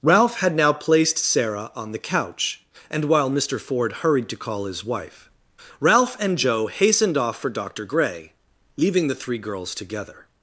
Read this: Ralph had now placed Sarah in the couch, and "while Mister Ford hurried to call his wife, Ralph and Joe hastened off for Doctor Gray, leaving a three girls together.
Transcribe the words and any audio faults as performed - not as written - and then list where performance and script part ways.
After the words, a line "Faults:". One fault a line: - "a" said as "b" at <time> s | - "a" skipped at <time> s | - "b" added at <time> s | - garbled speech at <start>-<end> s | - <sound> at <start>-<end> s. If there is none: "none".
Ralph had now placed Sarah on the couch, and "while Mister Ford hurried to call his wife, Ralph and Joe hastened off for Doctor Gray, leaving the three girls together.
Faults:
- "in" said as "on" at 1.8 s
- "a" said as "the" at 9.1 s